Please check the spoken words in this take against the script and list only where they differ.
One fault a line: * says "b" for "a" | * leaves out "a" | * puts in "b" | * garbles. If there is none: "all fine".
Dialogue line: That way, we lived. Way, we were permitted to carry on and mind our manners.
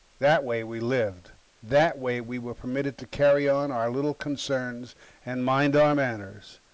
* puts in "That"
* puts in "our little concerns"